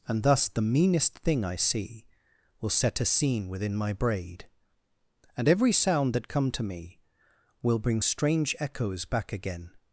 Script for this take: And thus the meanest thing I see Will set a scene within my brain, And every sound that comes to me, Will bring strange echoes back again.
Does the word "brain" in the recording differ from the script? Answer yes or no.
yes